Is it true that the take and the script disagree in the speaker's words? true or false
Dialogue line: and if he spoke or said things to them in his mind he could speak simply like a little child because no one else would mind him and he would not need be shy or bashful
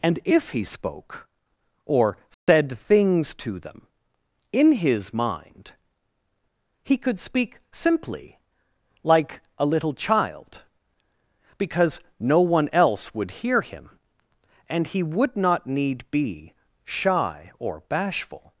true